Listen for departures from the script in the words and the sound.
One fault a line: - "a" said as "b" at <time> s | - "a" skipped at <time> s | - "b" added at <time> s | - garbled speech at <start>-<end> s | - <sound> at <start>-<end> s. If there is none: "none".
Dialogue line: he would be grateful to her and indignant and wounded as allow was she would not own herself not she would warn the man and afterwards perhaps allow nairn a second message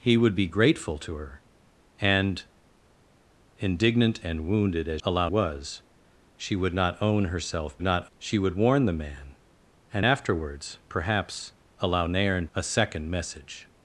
none